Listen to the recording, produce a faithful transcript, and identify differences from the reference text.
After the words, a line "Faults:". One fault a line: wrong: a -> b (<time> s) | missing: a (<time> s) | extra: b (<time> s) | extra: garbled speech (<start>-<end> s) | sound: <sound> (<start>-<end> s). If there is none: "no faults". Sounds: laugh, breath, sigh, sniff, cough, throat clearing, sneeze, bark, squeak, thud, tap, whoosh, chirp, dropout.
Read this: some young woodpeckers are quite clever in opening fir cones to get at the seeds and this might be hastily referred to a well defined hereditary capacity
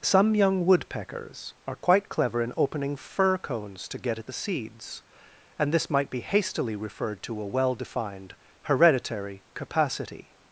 some young woodpeckers are quite clever in opening fir cones to get at the seeds and this might be hastily referred to a well defined hereditary capacity
Faults:
no faults